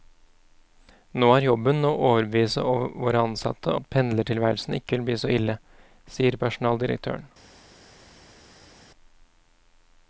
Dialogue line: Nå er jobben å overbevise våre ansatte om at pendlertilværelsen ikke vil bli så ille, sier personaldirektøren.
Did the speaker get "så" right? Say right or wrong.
right